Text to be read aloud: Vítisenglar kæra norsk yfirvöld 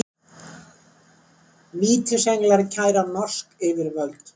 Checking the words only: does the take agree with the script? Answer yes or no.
yes